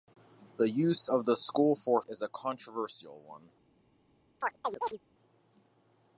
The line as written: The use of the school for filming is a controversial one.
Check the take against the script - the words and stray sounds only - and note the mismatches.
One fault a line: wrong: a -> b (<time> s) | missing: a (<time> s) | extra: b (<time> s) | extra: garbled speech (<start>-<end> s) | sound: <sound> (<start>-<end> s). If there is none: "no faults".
missing: filming (2.0 s)
sound: chirp (4.4-5.0 s)